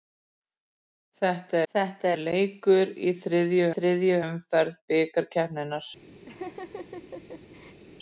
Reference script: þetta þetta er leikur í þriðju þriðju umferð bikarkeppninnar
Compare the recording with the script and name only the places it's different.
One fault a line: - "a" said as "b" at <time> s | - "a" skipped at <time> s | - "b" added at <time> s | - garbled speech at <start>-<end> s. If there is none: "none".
none